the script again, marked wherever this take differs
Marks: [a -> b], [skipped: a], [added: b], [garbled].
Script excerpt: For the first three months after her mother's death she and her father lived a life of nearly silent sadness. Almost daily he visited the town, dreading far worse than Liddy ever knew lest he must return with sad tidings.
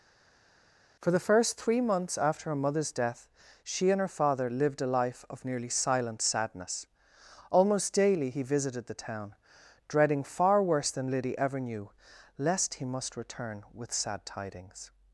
For the first three months after her mother's death she and her father lived a life of nearly silent sadness. Almost daily he visited the town, dreading far worse than Liddy ever knew lest he must return with sad tidings.